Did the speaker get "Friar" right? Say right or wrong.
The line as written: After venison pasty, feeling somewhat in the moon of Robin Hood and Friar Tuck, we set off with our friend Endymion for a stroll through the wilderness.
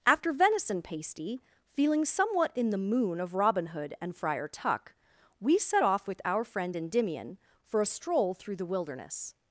right